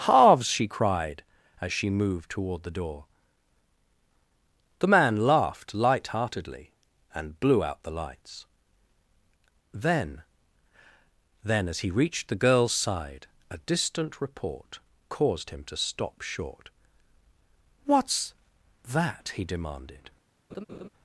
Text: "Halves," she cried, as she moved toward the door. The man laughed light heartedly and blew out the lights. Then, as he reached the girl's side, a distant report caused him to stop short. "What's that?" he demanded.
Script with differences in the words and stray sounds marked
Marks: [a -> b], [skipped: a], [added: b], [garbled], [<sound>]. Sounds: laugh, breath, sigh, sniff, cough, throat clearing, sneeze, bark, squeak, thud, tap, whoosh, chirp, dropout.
"Halves," she cried, as she moved toward the door. The man laughed light heartedly and blew out the lights. Then, [added: Then] as he reached the girl's side, a distant report caused him to stop short. "What's that?" he demanded. [laugh]